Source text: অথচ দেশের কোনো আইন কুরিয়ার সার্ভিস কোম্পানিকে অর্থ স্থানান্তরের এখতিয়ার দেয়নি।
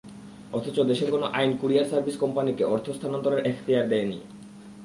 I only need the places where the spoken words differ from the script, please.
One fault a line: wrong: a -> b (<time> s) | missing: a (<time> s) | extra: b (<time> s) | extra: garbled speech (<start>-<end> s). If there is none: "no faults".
no faults